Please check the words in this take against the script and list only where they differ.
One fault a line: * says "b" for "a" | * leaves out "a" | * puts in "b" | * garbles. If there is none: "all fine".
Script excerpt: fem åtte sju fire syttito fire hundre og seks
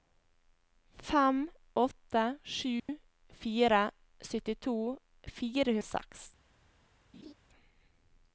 * leaves out "hundre"